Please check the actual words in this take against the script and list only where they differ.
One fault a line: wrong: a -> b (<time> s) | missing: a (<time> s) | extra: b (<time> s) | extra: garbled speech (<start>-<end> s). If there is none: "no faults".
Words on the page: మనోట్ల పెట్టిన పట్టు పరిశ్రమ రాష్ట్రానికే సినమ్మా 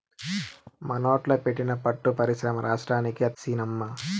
no faults